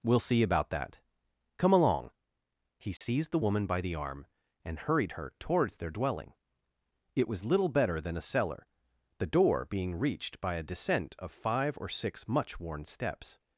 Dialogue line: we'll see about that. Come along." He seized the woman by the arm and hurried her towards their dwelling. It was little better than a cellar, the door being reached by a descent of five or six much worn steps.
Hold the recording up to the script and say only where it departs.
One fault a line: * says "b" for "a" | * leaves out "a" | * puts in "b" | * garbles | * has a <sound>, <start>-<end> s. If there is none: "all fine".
* has a dropout, 3.0-3.0 s